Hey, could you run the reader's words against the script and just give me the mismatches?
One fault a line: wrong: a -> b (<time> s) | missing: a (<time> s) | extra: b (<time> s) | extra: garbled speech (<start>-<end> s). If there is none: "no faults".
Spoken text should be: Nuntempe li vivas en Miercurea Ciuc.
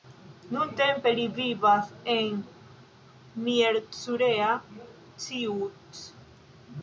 no faults